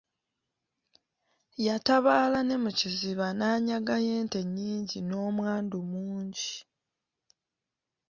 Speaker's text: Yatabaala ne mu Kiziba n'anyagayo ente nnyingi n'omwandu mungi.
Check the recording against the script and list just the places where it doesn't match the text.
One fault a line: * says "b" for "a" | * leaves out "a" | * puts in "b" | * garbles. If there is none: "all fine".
all fine